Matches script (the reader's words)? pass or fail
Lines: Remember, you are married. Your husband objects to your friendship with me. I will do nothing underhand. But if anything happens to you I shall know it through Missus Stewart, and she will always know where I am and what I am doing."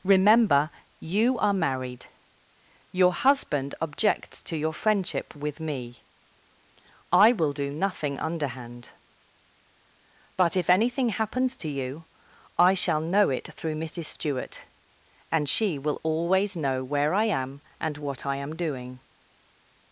pass